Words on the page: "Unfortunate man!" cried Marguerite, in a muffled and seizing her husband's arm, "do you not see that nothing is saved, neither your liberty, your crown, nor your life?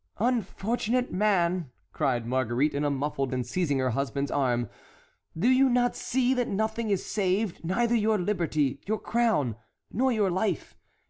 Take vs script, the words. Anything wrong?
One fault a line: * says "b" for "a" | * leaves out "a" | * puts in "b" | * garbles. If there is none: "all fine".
all fine